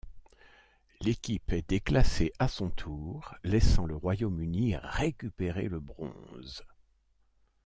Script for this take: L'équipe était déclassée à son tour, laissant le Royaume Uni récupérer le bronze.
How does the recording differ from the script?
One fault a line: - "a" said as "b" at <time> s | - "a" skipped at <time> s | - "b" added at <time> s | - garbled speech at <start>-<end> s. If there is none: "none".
- "était" said as "est" at 1.5 s